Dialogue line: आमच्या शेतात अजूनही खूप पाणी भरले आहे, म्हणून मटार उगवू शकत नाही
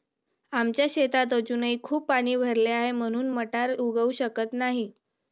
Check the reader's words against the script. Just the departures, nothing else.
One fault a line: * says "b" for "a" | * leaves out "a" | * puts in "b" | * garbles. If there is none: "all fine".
all fine